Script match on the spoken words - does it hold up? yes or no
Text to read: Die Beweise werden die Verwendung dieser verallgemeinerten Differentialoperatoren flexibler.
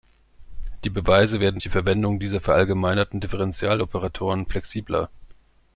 yes